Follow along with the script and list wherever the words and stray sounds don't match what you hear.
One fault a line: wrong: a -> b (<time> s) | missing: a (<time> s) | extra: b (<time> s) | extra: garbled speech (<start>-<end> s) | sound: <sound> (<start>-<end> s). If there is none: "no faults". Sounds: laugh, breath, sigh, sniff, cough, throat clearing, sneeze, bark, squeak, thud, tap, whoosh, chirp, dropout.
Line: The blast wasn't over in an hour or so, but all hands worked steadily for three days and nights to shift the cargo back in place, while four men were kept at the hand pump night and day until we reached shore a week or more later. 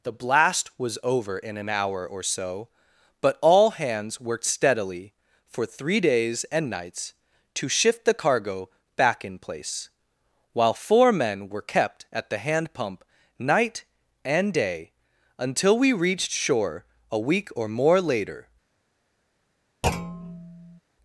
wrong: wasn't -> was (0.8 s)
sound: thud (19.8-20.8 s)